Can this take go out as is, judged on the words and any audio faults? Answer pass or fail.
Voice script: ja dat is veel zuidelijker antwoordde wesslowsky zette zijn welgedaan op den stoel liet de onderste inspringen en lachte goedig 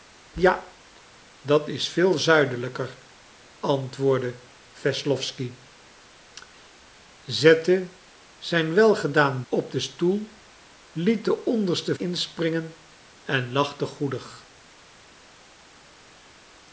pass